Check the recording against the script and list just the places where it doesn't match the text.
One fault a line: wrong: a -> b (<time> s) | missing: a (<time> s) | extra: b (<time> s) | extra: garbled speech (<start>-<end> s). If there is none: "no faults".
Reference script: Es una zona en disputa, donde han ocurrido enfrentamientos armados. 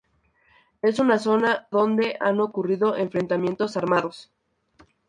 missing: en disputa (1.7 s)